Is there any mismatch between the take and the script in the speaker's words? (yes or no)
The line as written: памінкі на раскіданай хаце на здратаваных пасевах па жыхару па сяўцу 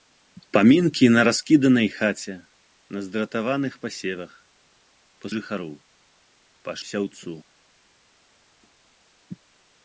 no